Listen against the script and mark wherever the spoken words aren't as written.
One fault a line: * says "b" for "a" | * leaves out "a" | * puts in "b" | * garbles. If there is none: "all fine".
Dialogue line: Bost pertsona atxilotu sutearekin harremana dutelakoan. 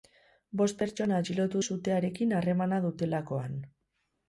all fine